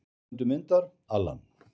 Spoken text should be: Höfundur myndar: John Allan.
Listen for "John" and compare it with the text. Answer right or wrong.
wrong